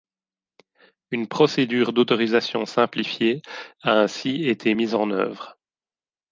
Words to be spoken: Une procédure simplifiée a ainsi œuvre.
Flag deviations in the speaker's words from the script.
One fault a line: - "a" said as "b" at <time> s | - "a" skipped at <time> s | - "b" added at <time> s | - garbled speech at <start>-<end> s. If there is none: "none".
- "d'autorisation" added at 1.9 s
- "été mise en" added at 4.5 s